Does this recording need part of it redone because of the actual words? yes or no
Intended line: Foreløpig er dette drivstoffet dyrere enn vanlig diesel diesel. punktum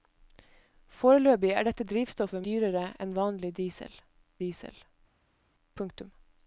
no